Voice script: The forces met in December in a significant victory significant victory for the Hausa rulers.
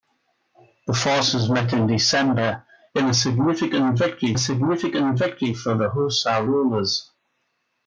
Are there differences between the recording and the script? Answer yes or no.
no